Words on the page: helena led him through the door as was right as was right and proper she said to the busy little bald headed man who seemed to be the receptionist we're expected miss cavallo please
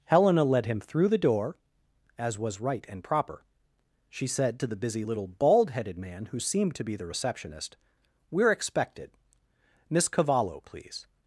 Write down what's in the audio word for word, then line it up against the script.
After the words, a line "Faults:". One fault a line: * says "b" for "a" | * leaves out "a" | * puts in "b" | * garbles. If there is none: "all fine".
helena led him through the door as was right and proper she said to the busy little bald headed man who seemed to be the receptionist we're expected miss cavallo please
Faults:
* leaves out "as was right"